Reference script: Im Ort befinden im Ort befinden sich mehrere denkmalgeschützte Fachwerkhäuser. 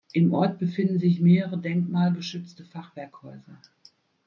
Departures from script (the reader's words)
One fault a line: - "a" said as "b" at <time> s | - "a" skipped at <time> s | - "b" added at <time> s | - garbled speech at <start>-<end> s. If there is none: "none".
- "im Ort befinden" skipped at 1.0 s